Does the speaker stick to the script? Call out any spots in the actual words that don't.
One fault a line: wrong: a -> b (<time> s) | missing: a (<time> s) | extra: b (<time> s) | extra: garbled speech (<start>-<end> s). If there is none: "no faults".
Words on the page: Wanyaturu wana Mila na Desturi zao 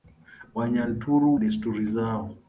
missing: wana Mila na (1.4 s)